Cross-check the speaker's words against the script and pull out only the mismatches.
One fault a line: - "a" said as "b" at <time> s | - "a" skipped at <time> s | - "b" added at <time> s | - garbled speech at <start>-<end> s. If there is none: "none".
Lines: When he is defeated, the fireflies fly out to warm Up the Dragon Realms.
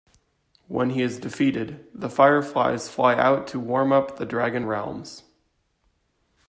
none